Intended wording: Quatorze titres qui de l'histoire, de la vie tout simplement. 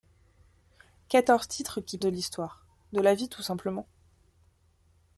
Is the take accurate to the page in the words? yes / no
yes